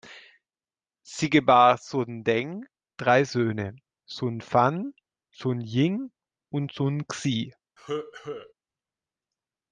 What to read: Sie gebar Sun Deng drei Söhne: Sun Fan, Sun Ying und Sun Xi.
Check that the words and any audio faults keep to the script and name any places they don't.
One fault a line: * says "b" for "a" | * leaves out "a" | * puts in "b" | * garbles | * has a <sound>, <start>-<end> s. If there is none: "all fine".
* has a cough, 7.8-8.5 s